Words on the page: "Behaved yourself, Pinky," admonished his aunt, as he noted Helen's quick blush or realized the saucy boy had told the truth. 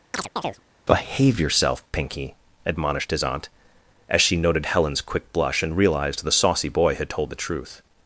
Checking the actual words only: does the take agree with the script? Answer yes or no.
no